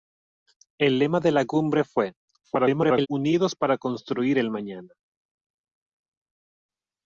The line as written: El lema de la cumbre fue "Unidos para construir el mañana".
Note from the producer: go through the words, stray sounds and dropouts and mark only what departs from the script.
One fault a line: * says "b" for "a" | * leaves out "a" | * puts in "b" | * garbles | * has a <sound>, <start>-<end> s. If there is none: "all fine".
* garbles